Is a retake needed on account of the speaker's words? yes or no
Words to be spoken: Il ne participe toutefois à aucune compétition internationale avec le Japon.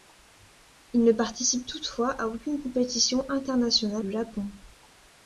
yes